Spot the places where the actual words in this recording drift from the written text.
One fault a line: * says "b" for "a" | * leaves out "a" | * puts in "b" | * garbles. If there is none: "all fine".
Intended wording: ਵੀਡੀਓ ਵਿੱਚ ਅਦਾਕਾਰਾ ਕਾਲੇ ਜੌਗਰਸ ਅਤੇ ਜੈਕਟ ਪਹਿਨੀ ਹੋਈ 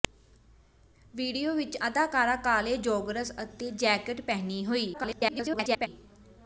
* garbles